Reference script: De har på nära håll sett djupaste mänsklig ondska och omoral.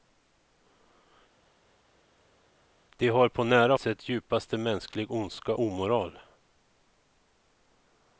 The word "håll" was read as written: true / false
false